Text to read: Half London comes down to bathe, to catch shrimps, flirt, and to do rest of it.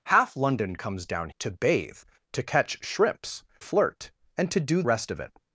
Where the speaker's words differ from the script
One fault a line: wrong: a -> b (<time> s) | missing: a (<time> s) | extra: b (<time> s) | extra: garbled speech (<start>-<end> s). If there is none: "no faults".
no faults